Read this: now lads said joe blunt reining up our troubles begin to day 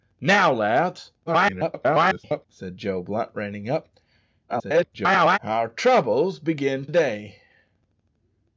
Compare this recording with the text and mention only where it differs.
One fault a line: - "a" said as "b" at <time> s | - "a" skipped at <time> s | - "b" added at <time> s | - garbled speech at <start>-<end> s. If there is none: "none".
- garbled speech at 1.3-2.5 s
- garbled speech at 4.5-5.4 s
- "to" skipped at 6.9 s